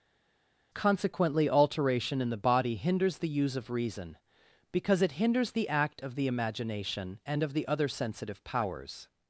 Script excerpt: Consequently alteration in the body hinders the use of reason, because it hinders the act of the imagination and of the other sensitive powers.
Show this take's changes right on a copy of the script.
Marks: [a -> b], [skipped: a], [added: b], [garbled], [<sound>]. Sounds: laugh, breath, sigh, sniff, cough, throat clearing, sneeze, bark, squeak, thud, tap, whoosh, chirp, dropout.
Consequently alteration in the body hinders the use of reason, because it hinders the act of the imagination and of the other sensitive powers.